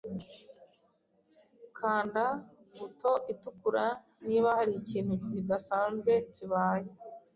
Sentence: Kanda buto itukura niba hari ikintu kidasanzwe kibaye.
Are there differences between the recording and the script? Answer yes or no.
no